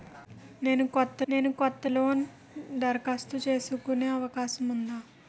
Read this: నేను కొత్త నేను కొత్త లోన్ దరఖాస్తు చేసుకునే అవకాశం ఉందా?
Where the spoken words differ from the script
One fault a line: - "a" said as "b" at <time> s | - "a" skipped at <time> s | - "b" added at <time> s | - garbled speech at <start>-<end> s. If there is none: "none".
none